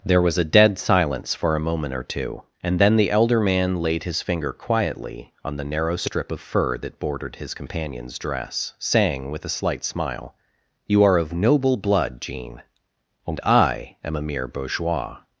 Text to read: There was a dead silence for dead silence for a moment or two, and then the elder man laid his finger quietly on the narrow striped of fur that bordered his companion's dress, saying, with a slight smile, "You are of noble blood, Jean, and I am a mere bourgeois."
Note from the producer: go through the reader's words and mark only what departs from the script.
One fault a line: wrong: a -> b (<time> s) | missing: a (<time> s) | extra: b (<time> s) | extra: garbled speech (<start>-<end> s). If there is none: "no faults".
missing: dead silence for (1.6 s)
wrong: striped -> strip (6.0 s)